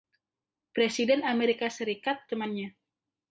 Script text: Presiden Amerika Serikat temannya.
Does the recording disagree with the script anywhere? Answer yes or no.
no